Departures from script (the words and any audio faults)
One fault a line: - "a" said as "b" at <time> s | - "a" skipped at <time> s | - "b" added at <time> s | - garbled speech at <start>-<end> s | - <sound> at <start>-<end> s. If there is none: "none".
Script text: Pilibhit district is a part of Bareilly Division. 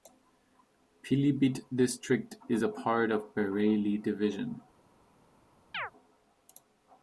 - chirp at 5.7-5.9 s